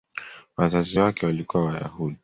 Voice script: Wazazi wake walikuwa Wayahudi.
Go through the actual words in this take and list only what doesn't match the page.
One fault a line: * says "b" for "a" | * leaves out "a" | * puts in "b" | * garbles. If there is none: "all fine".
all fine